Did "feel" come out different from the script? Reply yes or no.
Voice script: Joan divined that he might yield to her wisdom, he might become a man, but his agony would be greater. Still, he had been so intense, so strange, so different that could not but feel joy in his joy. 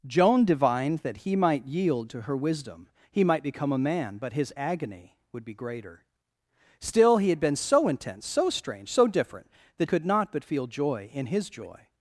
no